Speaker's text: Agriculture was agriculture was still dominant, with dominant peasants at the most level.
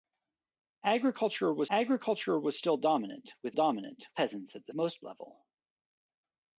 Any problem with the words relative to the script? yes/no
no